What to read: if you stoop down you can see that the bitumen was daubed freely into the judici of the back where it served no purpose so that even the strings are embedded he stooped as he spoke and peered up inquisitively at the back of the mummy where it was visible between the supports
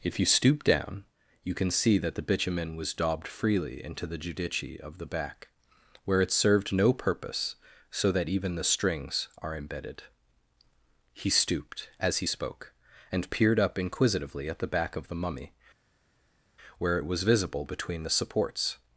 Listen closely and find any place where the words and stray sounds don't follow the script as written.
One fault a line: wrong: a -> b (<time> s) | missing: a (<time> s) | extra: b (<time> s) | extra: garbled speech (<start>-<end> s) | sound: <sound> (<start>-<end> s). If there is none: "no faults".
no faults